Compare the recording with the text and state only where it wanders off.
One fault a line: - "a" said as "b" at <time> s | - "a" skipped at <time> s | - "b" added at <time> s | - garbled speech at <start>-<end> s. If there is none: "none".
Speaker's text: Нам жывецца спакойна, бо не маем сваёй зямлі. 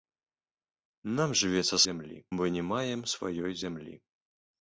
- "спакойна" said as "зямлі" at 1.9 s